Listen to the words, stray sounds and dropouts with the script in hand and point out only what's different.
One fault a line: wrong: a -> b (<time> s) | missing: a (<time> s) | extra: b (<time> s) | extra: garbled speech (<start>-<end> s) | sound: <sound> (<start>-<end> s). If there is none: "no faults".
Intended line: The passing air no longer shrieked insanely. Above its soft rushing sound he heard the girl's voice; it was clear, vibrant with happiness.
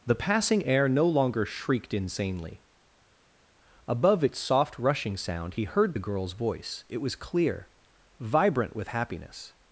no faults